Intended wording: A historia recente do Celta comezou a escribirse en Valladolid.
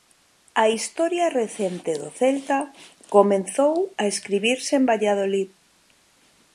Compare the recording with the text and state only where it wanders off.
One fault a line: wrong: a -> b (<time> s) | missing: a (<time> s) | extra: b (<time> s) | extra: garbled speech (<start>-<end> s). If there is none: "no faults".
no faults